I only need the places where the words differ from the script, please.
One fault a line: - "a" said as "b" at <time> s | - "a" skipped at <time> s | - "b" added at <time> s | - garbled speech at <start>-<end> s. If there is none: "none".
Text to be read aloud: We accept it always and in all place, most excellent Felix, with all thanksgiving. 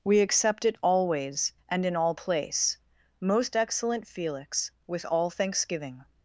none